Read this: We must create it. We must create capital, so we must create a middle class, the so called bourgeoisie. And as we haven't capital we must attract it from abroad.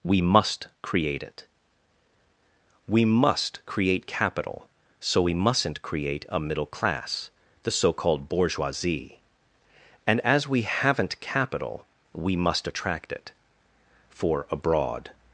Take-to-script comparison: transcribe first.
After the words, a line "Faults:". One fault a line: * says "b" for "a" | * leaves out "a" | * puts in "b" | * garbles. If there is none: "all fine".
We must create it. We must create capital, so we mustn't create a middle class, the so called bourgeoisie. And as we haven't capital we must attract it for abroad.
Faults:
* says "mustn't" for "must"
* says "for" for "from"